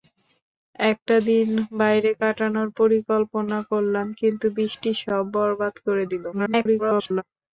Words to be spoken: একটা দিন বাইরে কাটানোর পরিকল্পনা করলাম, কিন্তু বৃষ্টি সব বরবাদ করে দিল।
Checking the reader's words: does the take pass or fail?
fail